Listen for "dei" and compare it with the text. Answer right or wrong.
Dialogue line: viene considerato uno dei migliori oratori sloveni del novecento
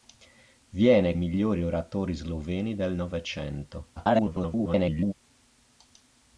wrong